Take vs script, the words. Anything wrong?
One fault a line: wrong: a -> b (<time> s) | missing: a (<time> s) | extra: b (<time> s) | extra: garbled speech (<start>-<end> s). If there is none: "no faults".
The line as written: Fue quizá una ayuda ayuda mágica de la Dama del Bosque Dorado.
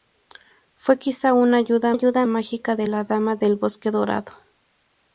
no faults